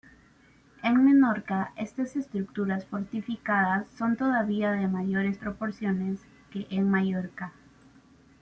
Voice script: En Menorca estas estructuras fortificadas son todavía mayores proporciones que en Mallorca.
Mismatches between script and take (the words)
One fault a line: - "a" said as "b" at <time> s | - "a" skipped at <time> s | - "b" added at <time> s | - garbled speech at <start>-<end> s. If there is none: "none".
- "de" added at 4.7 s